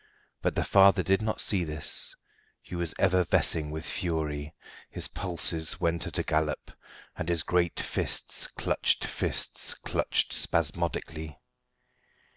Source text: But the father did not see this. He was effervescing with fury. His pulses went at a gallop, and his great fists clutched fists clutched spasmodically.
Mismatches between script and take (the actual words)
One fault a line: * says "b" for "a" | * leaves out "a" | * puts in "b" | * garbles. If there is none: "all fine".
all fine